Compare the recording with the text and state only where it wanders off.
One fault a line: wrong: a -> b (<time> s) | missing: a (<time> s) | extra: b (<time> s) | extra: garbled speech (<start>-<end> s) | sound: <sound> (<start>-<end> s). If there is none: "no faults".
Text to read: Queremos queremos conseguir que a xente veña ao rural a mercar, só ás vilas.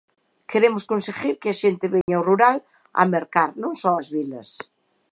missing: queremos (0.8 s)
sound: dropout (2.0-2.1 s)
extra: non (3.6 s)